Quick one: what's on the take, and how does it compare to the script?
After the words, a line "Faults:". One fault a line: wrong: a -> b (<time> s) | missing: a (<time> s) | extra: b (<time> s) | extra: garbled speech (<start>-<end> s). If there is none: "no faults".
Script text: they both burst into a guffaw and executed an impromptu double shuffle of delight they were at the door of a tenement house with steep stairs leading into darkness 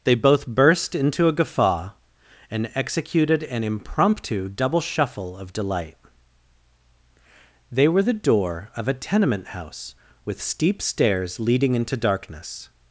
they both burst into a guffaw and executed an impromptu double shuffle of delight they were the door of a tenement house with steep stairs leading into darkness
Faults:
missing: at (8.0 s)